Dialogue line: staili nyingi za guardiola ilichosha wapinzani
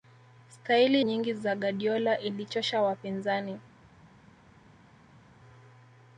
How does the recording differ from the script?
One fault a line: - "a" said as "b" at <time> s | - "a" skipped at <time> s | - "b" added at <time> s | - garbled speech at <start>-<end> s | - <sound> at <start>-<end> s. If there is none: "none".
none